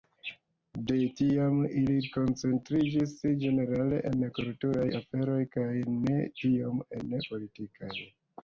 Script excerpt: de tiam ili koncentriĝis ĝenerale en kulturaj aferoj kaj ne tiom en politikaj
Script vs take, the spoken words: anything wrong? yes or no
no